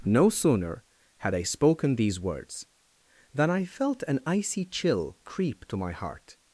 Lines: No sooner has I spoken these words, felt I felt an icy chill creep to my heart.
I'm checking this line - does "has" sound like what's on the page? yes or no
no